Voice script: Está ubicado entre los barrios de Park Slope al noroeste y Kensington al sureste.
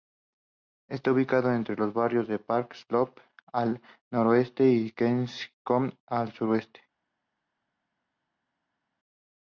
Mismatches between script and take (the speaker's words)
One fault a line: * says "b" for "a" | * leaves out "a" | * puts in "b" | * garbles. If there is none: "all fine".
all fine